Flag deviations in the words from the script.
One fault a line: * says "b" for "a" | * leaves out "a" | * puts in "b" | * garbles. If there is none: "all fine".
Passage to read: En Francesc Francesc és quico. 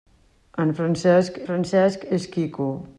all fine